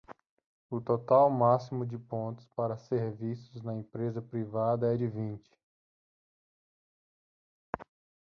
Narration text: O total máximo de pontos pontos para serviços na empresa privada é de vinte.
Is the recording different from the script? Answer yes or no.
yes